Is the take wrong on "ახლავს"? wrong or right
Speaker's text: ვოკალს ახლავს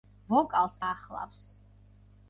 right